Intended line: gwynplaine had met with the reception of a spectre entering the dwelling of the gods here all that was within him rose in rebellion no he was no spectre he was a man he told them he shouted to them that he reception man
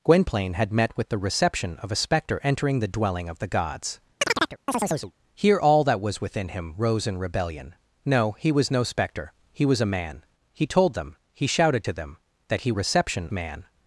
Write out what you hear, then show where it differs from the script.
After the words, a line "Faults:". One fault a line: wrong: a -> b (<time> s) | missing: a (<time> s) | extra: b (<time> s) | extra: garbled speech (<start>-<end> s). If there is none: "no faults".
gwynplaine had met with the reception of a spectre entering the dwelling of the gods here all that was within him rose in rebellion no he was no spectre he was a man he told them he shouted to them that he reception man
Faults:
no faults